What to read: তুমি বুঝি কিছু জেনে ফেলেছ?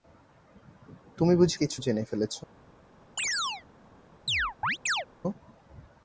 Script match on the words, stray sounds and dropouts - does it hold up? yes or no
no